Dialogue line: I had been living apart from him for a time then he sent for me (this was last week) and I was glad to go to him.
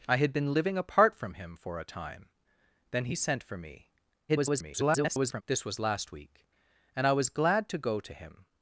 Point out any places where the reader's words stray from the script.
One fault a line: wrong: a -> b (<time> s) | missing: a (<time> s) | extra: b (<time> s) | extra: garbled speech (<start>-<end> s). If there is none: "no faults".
extra: garbled speech (4.3-5.4 s)